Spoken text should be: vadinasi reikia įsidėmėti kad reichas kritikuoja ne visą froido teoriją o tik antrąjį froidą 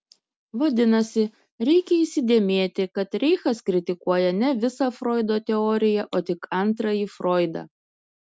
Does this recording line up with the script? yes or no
yes